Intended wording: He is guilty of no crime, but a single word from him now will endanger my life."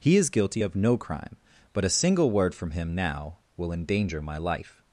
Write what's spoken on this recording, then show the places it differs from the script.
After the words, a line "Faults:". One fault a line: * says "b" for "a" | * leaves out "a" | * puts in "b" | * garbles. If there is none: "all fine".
He is guilty of no crime, but a single word from him now will endanger my life."
Faults:
all fine